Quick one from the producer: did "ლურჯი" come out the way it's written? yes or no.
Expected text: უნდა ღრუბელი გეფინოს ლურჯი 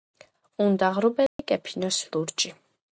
yes